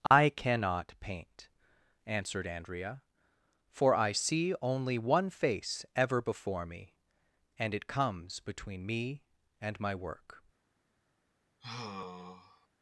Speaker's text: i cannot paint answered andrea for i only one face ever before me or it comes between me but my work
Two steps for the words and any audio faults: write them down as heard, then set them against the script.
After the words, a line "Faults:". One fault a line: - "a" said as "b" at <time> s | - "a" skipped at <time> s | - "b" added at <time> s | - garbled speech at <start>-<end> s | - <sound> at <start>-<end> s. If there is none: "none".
i cannot paint answered andrea for i see only one face ever before me and it comes between me and my work
Faults:
- dropout at 0.1-0.1 s
- "see" added at 4.1 s
- "or" said as "and" at 7.6 s
- "but" said as "and" at 9.6 s
- sigh at 11.6-12.7 s